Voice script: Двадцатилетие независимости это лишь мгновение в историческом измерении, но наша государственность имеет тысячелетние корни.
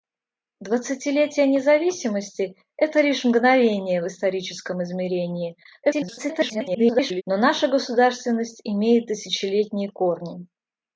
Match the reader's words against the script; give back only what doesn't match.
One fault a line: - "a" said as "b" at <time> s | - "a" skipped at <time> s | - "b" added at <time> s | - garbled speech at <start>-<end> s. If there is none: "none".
- garbled speech at 5.8-7.2 s